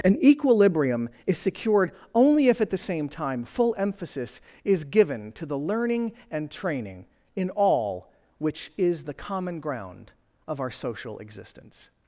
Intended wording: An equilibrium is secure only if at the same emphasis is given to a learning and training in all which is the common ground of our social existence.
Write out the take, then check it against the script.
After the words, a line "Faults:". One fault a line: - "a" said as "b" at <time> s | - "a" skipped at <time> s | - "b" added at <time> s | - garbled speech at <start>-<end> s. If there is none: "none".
An equilibrium is secured only if at the same time full emphasis is given to the learning and training in all which is the common ground of our social existence.
Faults:
- "secure" said as "secured" at 1.4 s
- "time full" added at 3.1 s
- "a" said as "the" at 5.5 s